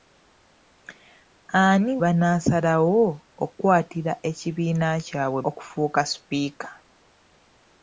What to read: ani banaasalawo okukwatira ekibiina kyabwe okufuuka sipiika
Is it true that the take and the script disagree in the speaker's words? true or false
false